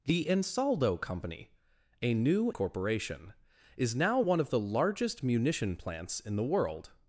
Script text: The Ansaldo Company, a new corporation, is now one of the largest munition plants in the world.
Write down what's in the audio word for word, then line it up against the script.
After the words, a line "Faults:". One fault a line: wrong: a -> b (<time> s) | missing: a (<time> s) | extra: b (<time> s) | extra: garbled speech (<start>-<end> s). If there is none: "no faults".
The Ansaldo Company, a new corporation, is now one of the largest munition plants in the world.
Faults:
no faults